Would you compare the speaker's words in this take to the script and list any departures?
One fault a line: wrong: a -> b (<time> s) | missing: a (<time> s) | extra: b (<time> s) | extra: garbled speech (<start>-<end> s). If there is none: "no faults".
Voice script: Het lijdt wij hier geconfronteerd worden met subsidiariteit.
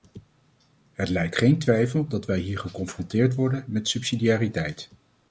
extra: geen twijfel dat (1.4 s)